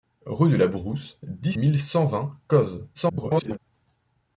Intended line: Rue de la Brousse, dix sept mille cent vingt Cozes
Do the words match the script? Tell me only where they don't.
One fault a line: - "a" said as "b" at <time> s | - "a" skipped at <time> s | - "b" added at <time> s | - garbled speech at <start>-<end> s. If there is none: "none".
- "sept" skipped at 1.5 s
- garbled speech at 2.9-3.6 s